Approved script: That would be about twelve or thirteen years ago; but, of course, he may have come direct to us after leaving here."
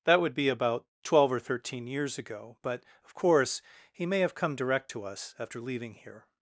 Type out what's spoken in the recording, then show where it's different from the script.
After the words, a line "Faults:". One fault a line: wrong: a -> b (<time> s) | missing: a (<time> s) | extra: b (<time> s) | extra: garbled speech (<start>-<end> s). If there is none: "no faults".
That would be about twelve or thirteen years ago; but, of course, he may have come direct to us after leaving here."
Faults:
no faults